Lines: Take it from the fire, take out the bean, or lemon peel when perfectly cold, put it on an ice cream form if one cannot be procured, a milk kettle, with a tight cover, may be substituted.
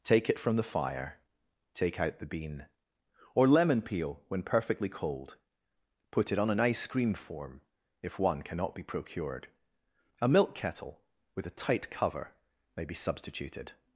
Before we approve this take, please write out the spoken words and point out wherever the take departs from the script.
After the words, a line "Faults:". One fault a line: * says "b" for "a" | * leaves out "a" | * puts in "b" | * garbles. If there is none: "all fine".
Take it from the fire, take out the bean, or lemon peel when perfectly cold, put it on an ice cream form if one cannot be procured, a milk kettle, with a tight cover, may be substituted.
Faults:
all fine